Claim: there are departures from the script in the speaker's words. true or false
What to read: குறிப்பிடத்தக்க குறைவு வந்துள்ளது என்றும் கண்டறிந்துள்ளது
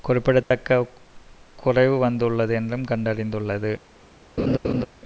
false